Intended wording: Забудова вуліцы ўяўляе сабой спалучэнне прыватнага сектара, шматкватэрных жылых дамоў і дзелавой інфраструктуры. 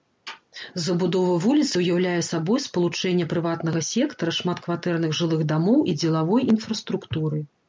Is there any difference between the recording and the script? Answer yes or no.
no